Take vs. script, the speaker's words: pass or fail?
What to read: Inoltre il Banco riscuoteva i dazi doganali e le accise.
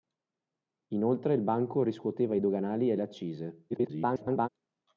fail